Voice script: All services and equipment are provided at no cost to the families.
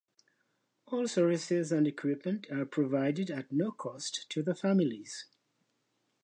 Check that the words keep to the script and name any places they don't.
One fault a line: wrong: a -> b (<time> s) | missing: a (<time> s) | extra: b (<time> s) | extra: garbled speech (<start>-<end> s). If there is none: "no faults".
no faults